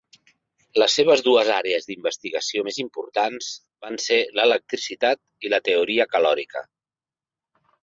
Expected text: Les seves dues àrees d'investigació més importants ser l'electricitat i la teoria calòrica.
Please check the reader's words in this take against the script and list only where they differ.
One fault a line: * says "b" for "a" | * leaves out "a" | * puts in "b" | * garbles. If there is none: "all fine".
* puts in "van"